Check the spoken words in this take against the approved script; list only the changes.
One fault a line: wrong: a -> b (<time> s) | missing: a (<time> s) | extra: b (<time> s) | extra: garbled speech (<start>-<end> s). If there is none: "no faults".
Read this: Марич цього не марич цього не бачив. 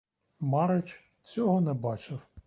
missing: марич цього не (1.7 s)